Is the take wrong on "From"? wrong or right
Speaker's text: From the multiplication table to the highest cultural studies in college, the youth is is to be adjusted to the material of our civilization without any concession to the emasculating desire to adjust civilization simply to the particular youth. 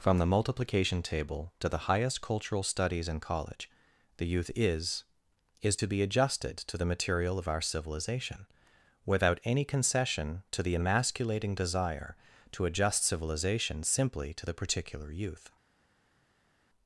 right